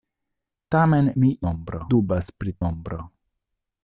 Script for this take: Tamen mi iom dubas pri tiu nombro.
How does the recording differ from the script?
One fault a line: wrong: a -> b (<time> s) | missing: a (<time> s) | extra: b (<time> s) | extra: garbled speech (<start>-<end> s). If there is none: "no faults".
wrong: iom -> nombro (1.5 s)
missing: tiu (2.6 s)